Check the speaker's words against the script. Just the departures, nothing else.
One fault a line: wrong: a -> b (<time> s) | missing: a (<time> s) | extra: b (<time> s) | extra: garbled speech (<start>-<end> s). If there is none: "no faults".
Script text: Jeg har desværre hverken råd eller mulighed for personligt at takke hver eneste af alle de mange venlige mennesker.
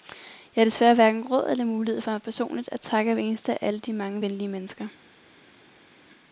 no faults